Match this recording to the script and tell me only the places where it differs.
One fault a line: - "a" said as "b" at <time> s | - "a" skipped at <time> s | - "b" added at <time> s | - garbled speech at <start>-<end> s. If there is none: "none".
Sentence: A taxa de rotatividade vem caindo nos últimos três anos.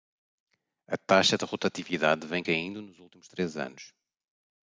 none